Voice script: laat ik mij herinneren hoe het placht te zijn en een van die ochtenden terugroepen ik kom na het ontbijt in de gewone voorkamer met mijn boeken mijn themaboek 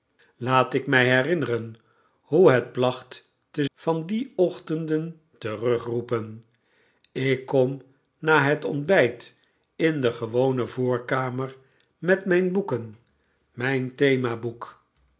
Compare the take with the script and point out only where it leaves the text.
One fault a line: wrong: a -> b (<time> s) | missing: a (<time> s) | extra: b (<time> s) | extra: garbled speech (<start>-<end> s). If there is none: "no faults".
missing: zijn en een (3.6 s)